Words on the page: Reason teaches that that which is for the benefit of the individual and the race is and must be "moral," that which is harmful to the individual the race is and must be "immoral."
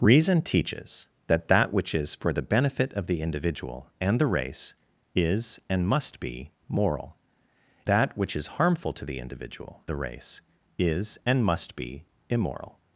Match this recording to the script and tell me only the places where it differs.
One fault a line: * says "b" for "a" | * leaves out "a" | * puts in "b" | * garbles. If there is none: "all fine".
all fine